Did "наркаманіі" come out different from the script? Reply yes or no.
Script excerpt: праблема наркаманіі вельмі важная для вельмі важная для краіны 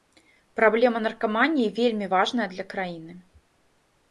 no